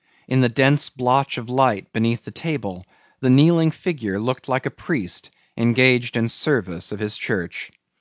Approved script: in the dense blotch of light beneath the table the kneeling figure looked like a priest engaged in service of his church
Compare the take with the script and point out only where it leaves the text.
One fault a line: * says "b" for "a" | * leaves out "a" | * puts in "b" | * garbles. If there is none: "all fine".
all fine